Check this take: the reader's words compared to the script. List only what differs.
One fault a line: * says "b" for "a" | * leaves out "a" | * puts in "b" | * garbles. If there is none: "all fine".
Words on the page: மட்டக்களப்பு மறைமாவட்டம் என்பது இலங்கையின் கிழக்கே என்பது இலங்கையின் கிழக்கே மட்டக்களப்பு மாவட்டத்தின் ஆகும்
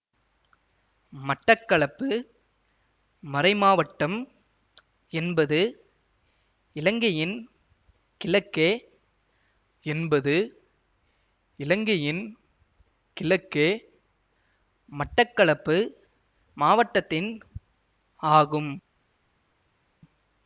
all fine